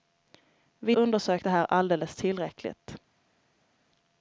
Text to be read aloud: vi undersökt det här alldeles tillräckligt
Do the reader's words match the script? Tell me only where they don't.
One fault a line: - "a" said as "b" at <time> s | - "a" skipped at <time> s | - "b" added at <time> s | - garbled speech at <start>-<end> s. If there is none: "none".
none